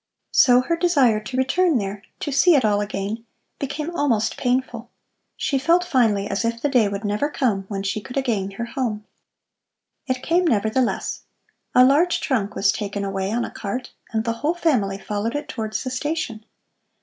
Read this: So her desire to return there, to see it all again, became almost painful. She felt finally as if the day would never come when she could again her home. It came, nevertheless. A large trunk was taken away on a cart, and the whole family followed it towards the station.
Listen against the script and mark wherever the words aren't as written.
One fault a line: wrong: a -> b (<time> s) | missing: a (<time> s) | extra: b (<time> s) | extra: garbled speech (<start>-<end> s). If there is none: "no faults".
no faults